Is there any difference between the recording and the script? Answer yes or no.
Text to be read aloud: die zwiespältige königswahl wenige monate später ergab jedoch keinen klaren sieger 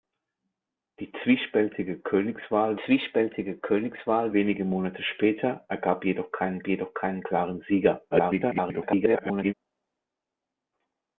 yes